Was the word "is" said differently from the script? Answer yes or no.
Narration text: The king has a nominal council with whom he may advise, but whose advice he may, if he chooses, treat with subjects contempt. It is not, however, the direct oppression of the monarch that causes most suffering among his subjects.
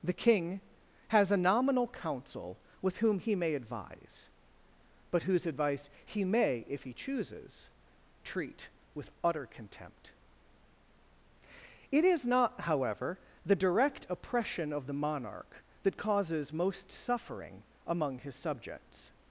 no